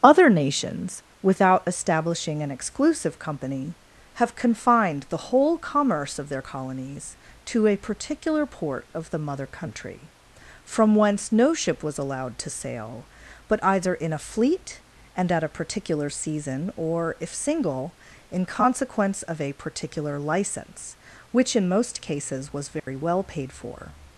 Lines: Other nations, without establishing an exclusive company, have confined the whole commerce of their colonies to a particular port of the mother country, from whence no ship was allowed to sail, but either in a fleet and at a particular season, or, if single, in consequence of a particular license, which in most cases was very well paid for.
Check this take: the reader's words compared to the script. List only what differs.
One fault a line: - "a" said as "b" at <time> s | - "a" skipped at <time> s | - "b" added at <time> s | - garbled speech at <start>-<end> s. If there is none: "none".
none